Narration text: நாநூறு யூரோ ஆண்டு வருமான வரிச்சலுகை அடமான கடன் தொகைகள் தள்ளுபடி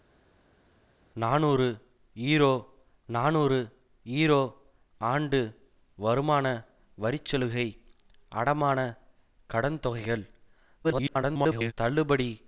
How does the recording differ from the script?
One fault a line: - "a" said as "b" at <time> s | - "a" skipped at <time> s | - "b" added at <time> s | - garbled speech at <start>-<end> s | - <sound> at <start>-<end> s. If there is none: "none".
- "நாநூறு யூரோ" added at 3.1 s
- garbled speech at 10.8-11.7 s